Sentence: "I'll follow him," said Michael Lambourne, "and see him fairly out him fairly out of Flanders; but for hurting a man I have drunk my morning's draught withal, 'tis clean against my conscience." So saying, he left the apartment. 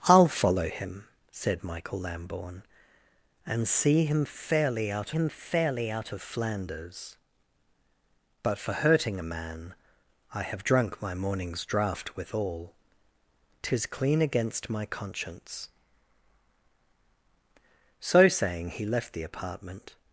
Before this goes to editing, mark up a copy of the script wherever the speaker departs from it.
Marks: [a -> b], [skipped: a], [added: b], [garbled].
"I'll follow him," said Michael Lambourne, "and see him fairly out him fairly out of Flanders; but for hurting a man I have drunk my morning's draught withal, 'tis clean against my conscience." So saying, he left the apartment.